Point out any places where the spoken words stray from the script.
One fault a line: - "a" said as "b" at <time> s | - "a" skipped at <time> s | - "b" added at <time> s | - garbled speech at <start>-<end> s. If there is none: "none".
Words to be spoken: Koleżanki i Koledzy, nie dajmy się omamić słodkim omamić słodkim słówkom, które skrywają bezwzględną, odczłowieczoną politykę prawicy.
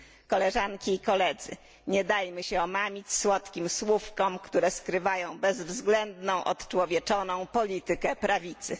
- "omamić słodkim" skipped at 3.7 s